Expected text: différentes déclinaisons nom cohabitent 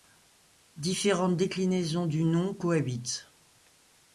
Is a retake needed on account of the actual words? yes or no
yes